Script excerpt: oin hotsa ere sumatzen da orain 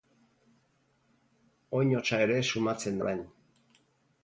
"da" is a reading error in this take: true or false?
true